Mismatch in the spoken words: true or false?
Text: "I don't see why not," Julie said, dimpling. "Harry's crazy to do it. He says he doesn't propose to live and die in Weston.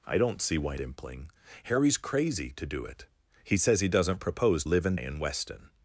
true